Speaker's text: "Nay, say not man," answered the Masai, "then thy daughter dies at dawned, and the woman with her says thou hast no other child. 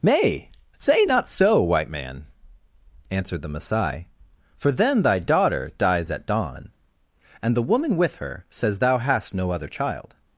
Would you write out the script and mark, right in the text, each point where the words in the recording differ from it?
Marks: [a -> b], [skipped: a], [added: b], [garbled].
"Nay, say not [added: so white] man," answered the Masai, [added: for] "then thy daughter dies at [dawned, -> dawn] and the woman with her says thou hast no other child.